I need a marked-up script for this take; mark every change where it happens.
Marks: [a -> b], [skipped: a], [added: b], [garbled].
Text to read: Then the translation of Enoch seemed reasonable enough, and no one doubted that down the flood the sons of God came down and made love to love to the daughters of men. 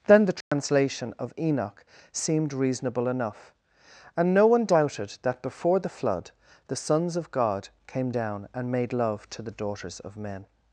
Then the translation of Enoch seemed reasonable enough, and no one doubted that [down -> before] the flood the sons of God came down and made love to [skipped: love to] the daughters of men.